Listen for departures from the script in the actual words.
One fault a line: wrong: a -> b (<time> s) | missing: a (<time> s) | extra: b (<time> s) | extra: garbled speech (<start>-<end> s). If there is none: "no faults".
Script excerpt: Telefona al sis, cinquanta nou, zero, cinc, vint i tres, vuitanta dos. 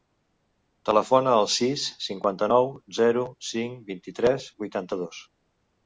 no faults